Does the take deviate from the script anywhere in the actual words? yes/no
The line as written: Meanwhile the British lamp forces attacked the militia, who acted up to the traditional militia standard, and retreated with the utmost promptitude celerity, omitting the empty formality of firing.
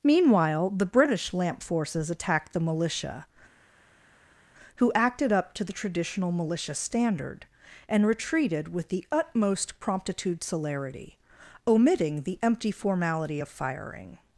no